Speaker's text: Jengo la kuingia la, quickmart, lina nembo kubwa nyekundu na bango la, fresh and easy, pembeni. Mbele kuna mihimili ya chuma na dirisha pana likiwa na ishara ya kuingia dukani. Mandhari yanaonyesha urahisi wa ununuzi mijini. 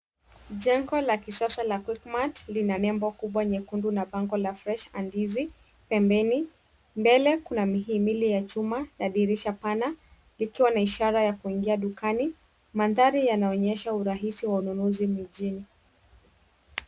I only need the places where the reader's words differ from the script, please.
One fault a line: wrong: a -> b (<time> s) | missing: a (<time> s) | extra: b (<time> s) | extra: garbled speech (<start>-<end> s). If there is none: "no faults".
wrong: kuingia -> kisasa (1.2 s)